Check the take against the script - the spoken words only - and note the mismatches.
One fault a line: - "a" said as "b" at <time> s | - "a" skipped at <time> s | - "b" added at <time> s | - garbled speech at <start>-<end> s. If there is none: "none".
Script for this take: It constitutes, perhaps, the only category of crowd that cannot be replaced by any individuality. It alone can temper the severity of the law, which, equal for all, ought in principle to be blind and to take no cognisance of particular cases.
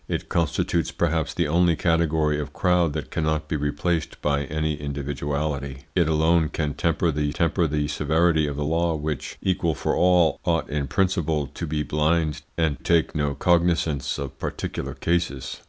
- "temper the" added at 7.3 s
- "to" skipped at 12.8 s